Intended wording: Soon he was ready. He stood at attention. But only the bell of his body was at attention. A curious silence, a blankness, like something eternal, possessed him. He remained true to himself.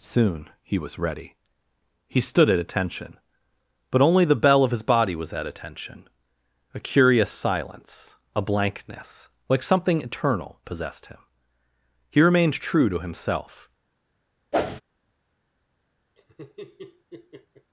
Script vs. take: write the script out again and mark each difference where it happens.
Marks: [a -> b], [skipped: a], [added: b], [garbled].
Soon he was ready. He stood at attention. But only the bell of his body was at attention. A curious silence, a blankness, like something eternal, possessed him. He remained true to himself.